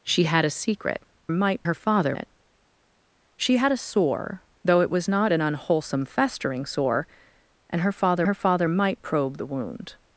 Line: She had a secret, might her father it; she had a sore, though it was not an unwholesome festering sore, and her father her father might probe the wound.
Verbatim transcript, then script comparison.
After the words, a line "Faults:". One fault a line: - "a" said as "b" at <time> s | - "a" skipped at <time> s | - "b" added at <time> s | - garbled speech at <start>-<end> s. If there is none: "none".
She had a secret, might her father it; she had a sore, though it was not an unwholesome festering sore, and her father her father might probe the wound.
Faults:
none